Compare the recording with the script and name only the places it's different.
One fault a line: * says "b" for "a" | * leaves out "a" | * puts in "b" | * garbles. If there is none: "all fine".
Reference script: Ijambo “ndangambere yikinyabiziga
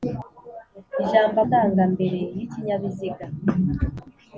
all fine